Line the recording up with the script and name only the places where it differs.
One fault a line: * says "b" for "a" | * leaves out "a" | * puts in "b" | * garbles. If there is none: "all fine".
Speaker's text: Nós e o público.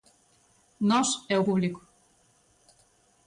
all fine